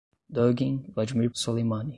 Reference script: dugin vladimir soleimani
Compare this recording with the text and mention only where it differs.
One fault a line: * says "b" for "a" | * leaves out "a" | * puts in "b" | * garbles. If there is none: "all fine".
all fine